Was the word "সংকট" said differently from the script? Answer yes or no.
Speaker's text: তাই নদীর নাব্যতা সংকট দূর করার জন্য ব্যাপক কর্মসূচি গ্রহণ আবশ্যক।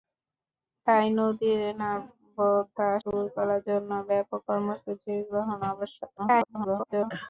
yes